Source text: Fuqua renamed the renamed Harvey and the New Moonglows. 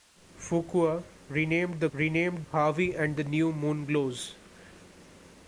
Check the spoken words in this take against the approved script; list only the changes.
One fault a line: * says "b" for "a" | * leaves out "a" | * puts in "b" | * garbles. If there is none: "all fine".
all fine